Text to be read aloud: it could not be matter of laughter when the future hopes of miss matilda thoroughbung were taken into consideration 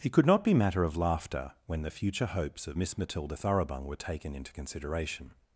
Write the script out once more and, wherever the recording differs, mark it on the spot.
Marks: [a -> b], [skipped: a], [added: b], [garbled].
it could not be matter of laughter when the future hopes of miss matilda thoroughbung were taken into consideration